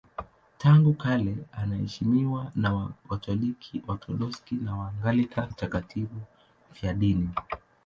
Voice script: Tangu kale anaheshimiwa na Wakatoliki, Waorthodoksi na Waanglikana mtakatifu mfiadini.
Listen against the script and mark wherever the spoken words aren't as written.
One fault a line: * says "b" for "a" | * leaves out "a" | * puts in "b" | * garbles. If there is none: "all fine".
all fine